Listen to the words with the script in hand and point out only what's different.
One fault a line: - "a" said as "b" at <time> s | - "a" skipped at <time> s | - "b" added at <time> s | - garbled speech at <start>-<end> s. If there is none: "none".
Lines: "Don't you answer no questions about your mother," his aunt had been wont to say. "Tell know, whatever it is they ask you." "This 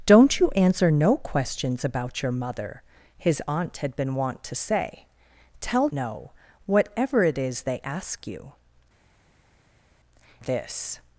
none